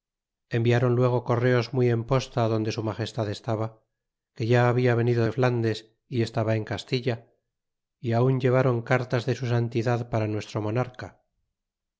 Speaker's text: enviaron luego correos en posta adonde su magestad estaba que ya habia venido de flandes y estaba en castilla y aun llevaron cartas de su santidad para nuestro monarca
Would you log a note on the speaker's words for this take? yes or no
yes